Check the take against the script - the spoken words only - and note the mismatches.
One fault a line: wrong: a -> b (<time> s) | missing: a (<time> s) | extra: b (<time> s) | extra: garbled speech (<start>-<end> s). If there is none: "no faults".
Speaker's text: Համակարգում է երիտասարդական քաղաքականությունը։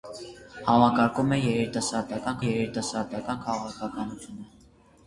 extra: երիտասարդական (2.4 s)